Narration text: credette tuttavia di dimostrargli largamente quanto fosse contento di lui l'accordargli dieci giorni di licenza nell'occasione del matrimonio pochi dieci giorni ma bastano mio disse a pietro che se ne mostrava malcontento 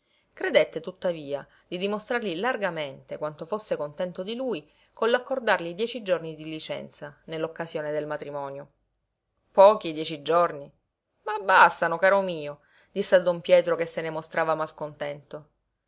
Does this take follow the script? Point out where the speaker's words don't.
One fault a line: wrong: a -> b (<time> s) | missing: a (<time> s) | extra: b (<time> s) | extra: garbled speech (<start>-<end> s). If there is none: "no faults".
extra: con (4.9 s)
extra: caro (12.0 s)
extra: don (13.2 s)